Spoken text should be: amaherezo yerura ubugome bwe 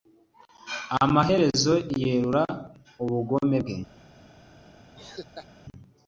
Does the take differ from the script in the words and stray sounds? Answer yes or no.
yes